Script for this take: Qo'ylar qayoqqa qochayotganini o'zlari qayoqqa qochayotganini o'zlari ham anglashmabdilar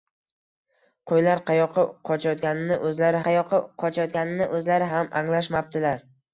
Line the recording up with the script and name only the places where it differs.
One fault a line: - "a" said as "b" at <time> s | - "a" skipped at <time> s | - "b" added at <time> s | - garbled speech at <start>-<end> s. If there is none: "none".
none